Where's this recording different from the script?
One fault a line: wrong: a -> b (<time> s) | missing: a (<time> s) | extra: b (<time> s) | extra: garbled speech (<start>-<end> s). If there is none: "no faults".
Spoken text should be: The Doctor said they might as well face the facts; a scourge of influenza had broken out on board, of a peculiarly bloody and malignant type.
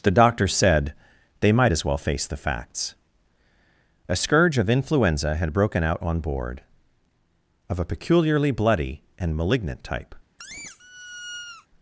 no faults